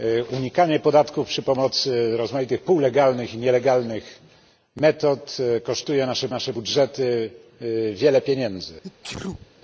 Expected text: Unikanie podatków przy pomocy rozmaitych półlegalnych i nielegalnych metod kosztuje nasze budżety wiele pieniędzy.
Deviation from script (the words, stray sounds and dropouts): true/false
true